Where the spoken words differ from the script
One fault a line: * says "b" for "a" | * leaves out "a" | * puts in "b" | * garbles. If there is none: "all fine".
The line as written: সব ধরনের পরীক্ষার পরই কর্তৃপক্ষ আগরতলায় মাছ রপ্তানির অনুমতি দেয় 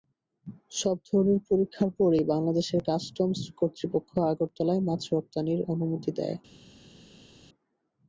* puts in "বাংলাদেশের কাস্টমস"